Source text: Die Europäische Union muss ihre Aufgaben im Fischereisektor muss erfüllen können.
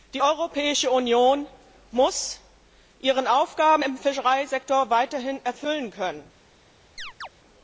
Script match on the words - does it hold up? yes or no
no